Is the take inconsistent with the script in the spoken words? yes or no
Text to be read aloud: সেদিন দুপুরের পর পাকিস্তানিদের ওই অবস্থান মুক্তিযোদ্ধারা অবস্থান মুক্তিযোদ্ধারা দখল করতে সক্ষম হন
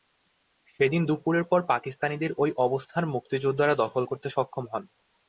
yes